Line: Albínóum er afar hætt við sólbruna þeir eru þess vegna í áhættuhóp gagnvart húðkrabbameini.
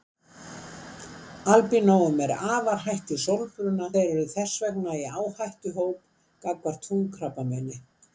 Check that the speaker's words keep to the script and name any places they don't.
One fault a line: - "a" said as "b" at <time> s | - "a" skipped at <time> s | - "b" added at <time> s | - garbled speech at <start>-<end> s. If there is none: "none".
none